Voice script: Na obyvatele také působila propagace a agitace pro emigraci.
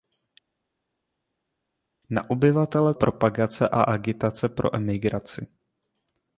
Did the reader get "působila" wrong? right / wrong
wrong